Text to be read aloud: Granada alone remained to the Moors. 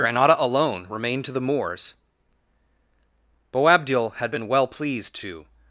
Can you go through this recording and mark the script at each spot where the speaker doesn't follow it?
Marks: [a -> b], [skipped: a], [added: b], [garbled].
Granada alone remained to the Moors. [added: Boabdil had been well pleased to]